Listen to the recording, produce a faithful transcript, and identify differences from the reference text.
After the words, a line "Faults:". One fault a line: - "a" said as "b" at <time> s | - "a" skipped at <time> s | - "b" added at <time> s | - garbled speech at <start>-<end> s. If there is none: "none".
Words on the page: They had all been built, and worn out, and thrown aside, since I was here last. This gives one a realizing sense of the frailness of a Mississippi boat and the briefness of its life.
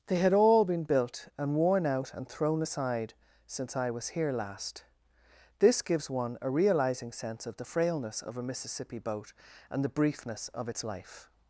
They had all been built, and worn out, and thrown aside, since I was here last. This gives one a realizing sense of the frailness of a Mississippi boat and the briefness of its life.
Faults:
none